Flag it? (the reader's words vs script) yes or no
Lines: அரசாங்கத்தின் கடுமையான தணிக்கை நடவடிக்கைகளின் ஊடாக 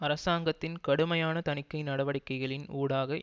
no